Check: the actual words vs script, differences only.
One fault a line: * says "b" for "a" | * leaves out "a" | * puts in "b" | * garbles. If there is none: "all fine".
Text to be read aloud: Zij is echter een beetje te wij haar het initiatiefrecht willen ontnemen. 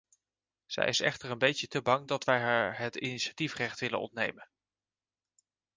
* puts in "bang dat"